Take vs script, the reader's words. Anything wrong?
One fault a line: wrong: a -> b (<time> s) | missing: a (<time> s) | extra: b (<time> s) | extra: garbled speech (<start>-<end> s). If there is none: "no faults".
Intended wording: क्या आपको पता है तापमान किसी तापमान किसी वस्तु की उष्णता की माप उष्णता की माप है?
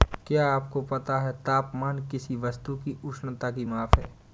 missing: तापमान किसी (2.4 s)
missing: उष्णता की माप (4.0 s)